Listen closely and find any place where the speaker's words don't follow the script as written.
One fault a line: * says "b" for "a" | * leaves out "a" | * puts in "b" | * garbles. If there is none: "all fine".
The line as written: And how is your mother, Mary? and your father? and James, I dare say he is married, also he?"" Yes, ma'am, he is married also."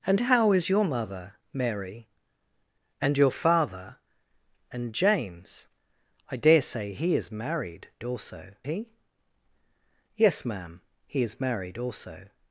all fine